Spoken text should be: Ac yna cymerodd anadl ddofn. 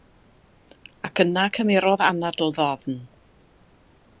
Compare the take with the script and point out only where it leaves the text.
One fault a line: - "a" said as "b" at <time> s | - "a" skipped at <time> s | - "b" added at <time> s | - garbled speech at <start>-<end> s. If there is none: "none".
none